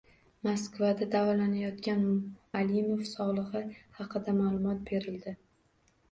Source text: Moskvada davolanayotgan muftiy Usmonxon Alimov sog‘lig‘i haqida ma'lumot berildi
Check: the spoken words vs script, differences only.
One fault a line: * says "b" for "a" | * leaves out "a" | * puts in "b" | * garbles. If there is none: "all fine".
* leaves out "muftiy Usmonxon"